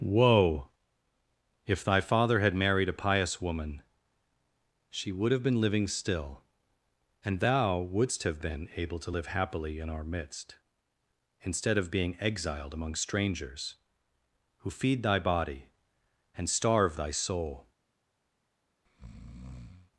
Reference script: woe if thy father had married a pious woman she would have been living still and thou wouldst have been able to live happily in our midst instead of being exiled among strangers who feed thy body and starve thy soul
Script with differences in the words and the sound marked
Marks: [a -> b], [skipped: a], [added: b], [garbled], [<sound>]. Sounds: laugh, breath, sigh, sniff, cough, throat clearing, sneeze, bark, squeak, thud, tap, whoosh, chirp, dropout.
woe if thy father had married a pious woman she would have been living still and thou wouldst have been able to live happily in our midst instead of being exiled among strangers who feed thy body and starve thy soul [breath]